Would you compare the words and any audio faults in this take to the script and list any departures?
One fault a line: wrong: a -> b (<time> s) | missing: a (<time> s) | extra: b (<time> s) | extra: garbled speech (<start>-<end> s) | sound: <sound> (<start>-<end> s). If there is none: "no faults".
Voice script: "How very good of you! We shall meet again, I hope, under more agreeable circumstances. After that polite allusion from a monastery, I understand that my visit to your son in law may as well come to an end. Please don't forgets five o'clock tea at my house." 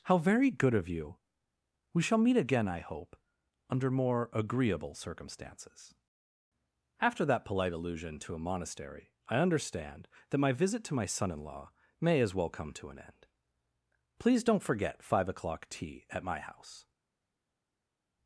wrong: from -> to (8.2 s)
wrong: your -> my (10.9 s)
wrong: forgets -> forget (14.6 s)